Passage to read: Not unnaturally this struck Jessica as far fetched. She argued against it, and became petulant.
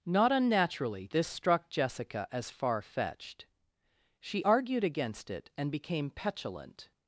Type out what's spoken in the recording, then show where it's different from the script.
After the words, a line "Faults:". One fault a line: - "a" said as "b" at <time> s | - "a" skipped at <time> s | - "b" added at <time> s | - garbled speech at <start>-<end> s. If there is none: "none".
Not unnaturally this struck Jessica as far fetched. She argued against it, and became petulant.
Faults:
none